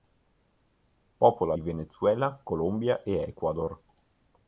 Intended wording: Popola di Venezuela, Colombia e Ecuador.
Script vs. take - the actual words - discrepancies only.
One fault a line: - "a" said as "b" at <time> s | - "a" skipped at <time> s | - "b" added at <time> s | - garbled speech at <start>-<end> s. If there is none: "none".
none